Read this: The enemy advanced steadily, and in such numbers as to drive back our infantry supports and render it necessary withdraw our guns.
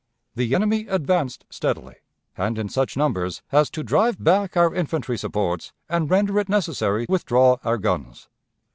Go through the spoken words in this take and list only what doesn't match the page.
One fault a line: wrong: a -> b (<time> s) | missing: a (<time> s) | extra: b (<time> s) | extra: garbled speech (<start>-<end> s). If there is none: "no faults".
no faults